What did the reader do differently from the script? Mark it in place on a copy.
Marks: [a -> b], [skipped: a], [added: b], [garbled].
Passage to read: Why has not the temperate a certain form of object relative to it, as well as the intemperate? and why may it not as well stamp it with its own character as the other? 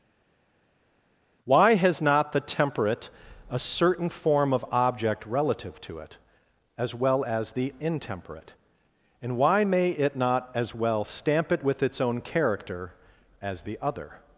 Why has not the temperate a certain form of object relative to it, as well as the intemperate? and why may it not as well stamp it with its own character as the other?